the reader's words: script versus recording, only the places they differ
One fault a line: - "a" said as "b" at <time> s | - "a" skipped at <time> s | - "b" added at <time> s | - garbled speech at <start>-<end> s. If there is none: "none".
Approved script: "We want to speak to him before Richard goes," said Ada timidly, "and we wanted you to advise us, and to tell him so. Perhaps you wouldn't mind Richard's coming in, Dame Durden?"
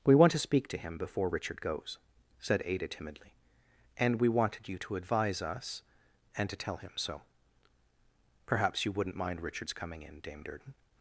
none